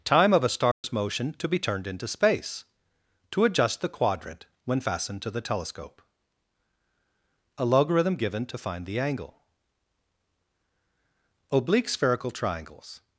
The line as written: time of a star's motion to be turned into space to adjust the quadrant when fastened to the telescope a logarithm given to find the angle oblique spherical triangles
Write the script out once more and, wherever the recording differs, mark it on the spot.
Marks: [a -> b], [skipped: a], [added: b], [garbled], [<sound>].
time of a star's [dropout] motion to be turned into space to adjust the quadrant when fastened to the telescope a logarithm given to find the angle oblique spherical triangles